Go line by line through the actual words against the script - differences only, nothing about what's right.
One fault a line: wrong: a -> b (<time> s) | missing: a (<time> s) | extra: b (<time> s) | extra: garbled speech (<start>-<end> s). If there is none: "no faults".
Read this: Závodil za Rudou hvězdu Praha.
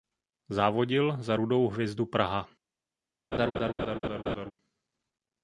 no faults